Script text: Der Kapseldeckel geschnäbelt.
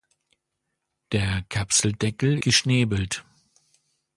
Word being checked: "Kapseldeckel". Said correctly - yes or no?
yes